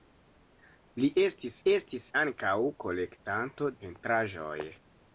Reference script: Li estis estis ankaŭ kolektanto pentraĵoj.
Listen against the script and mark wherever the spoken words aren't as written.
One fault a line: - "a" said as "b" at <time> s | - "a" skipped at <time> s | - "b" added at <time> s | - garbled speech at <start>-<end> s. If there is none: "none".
none